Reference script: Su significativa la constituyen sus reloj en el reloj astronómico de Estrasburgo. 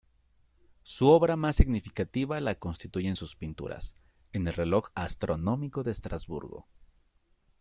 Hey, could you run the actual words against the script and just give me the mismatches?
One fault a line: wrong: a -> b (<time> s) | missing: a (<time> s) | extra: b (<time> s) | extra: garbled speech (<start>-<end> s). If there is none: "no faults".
extra: obra más (1.1 s)
wrong: reloj -> pinturas (3.4 s)